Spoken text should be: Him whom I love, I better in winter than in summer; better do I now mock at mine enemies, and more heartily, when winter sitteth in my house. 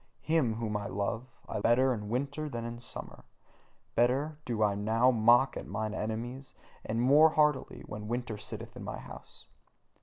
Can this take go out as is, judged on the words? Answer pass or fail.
pass